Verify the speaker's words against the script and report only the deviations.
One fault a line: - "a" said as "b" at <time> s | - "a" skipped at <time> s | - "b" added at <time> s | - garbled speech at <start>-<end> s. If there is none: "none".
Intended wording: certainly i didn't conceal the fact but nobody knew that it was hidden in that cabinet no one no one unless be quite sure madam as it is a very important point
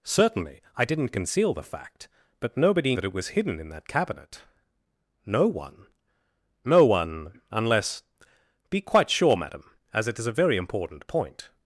- "knew" skipped at 3.0 s